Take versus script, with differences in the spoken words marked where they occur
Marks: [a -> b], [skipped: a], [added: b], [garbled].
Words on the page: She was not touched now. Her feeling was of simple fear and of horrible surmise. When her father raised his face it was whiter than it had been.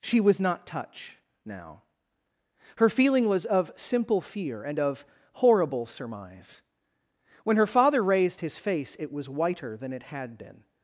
She was not [touched -> touch] now. Her feeling was of simple fear and of horrible surmise. When her father raised his face it was whiter than it had been.